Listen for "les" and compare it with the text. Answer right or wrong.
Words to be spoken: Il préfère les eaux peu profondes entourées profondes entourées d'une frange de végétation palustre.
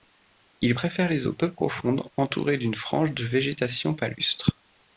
right